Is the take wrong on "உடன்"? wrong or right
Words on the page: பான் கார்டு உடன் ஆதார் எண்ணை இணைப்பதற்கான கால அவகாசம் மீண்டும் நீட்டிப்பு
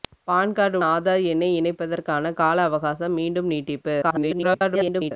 wrong